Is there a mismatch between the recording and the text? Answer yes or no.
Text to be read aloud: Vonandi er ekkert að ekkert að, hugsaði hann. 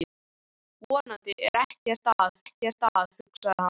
no